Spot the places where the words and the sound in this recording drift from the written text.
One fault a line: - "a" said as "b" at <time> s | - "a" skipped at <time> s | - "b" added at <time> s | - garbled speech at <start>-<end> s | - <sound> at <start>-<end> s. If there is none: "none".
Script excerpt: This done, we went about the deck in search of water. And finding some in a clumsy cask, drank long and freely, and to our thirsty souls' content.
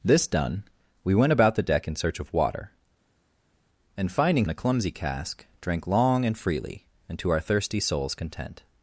- "some" skipped at 4.5 s